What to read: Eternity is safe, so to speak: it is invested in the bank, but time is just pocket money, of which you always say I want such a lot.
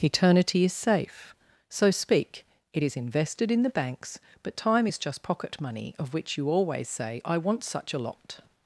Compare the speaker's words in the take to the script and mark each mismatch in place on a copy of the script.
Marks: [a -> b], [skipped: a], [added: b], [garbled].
Eternity is safe, so [skipped: to] speak: it is invested in the [bank, -> banks] but time is just pocket money, of which you always say I want such a lot.